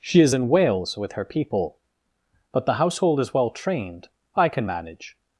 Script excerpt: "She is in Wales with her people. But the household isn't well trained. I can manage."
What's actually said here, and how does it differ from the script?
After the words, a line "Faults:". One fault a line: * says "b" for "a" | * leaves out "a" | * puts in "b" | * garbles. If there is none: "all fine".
"She is in Wales with her people. But the household is well trained. I can manage."
Faults:
* says "is" for "isn't"